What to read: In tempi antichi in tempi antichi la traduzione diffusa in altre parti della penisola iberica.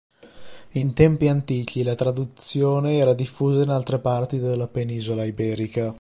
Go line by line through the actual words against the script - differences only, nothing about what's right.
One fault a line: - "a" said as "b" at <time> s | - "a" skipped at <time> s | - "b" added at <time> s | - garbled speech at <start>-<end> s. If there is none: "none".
- "in tempi antichi" skipped at 1.8 s
- "era" added at 3.0 s